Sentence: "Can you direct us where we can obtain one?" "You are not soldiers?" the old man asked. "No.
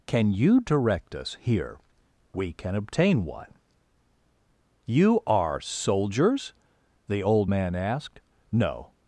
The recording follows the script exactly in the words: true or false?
false